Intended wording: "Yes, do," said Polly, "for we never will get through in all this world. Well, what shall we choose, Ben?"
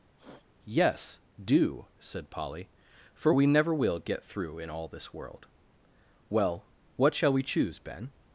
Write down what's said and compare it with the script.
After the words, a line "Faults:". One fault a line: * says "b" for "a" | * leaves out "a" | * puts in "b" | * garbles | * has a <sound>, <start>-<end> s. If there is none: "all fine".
"Yes, do," said Polly, "for we never will get through in all this world. Well, what shall we choose, Ben?"
Faults:
* has a sniff, 0.2-0.5 s